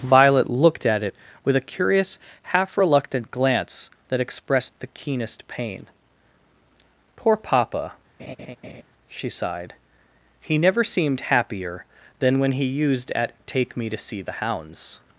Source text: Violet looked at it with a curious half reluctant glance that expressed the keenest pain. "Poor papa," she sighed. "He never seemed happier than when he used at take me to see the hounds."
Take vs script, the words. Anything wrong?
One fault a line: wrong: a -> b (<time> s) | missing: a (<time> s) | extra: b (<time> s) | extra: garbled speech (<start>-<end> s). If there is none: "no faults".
no faults